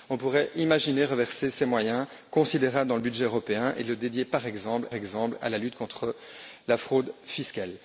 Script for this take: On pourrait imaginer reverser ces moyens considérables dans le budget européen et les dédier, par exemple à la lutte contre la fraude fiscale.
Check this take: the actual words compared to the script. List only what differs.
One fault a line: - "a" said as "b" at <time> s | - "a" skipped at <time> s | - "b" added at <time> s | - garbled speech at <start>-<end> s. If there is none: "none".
- "exemple" added at 4.9 s